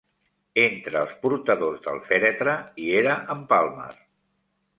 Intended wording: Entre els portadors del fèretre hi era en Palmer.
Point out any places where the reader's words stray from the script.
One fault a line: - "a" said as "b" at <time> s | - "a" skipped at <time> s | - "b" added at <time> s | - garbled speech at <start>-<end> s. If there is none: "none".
none